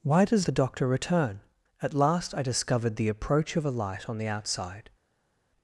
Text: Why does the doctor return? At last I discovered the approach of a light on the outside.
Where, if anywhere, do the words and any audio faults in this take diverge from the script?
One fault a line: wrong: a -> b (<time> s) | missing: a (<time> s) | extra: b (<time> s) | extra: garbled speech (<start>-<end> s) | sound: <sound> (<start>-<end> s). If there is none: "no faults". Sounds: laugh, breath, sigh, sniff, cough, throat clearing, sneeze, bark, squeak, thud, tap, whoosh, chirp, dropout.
no faults